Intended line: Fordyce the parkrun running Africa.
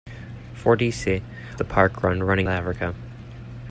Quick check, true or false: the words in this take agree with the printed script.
true